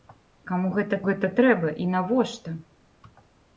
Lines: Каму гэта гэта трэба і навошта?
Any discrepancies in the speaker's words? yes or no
no